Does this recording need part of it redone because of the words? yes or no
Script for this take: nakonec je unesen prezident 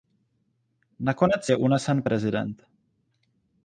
no